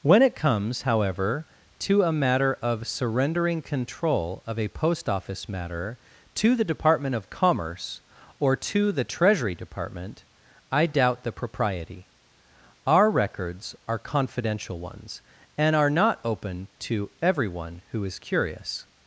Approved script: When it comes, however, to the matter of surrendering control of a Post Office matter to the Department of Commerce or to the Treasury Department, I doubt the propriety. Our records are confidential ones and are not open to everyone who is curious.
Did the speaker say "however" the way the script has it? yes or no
yes